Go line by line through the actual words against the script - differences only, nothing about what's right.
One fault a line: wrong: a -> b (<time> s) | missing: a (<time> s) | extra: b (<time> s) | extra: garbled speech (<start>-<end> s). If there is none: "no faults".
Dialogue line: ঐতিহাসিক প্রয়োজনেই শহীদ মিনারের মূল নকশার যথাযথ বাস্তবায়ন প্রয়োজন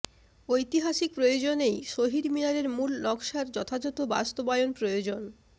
no faults